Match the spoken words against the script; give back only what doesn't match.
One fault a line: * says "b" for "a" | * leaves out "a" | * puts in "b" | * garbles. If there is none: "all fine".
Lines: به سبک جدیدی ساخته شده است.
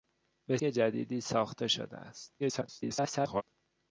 * leaves out "سبک"
* garbles